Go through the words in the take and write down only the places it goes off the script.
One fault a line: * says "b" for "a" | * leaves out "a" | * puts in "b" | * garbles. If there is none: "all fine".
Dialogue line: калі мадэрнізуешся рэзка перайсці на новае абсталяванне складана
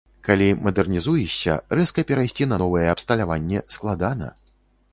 all fine